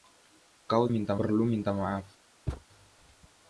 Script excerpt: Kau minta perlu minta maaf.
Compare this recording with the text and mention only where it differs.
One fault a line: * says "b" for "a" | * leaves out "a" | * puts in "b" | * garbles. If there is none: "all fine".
all fine